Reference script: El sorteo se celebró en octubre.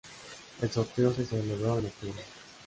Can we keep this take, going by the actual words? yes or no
yes